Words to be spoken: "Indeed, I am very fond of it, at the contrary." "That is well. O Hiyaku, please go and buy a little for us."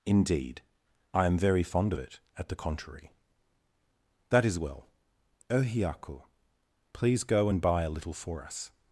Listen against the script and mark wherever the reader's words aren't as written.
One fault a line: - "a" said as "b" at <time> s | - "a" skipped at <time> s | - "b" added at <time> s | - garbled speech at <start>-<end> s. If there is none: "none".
none